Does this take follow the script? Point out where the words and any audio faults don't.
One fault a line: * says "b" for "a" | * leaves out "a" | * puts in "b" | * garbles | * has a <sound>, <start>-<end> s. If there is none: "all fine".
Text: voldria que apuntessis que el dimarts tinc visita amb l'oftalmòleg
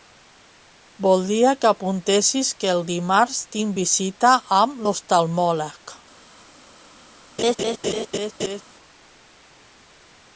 * has a laugh, 7.4-8.6 s